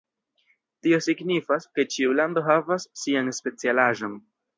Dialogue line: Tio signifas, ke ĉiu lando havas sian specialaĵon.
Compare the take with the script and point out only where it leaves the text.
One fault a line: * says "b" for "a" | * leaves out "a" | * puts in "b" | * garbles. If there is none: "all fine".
all fine